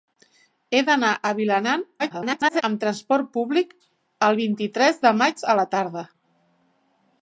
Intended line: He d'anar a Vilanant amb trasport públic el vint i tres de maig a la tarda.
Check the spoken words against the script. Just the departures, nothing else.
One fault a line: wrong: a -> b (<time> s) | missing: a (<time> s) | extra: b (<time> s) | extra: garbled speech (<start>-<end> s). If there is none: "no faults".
extra: garbled speech (2.0-2.6 s)